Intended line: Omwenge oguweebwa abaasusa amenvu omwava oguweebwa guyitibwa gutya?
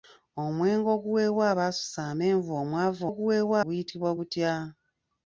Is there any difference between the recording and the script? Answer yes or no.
no